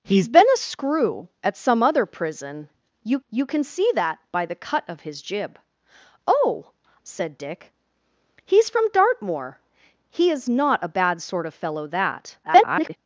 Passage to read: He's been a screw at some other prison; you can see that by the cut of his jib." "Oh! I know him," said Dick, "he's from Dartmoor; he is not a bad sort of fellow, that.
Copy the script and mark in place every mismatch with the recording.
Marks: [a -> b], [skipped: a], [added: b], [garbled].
He's been a screw at some other prison; you [added: you] can see that by the cut of his jib." "Oh! [skipped: I know him,"] said Dick, "he's from Dartmoor; he is not a bad sort of fellow, that. [garbled]